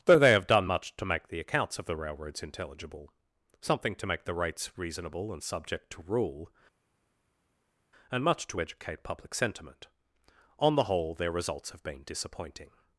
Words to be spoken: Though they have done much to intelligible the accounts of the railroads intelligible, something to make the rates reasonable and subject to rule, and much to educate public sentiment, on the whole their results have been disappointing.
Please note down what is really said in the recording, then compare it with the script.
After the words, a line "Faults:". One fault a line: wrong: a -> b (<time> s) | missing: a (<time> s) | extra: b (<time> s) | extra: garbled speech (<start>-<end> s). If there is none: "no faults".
Though they have done much to make the accounts of the railroads intelligible, something to make the rates reasonable and subject to rule, and much to educate public sentiment, on the whole their results have been disappointing.
Faults:
wrong: intelligible -> make (1.1 s)